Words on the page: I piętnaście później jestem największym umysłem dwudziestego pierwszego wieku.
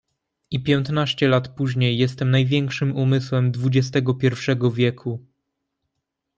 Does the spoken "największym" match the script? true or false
true